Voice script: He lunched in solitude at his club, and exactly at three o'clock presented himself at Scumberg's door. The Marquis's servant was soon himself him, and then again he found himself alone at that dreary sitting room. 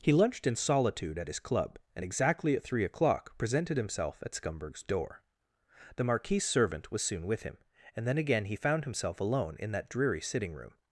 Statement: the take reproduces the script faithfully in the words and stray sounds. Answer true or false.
false